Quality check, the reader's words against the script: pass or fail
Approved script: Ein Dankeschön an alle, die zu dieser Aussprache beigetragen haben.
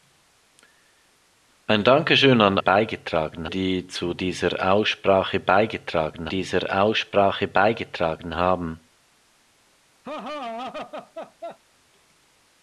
fail